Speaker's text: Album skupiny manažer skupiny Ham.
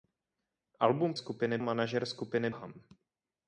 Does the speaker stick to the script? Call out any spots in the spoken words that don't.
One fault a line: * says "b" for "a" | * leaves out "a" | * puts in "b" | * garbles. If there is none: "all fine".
all fine